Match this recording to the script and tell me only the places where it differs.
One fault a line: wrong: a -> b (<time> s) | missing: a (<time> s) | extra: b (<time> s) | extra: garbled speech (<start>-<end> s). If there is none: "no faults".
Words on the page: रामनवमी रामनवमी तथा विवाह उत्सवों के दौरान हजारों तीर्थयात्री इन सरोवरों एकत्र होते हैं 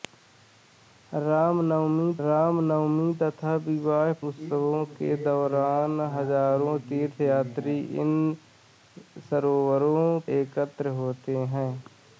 no faults